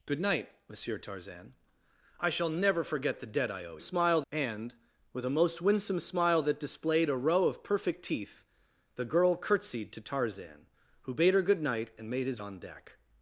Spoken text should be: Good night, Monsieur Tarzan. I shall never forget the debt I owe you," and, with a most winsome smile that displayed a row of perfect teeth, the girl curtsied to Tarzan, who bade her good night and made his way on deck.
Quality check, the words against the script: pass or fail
fail